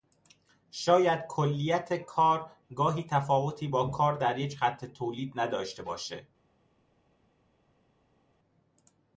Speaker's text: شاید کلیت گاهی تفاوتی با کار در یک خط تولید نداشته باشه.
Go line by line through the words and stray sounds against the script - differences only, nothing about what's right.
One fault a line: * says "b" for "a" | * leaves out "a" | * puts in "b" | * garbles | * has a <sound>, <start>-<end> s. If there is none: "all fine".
* puts in "کار"